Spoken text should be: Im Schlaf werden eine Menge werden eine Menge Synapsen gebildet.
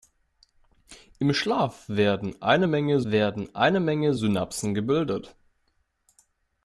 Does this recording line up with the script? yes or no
yes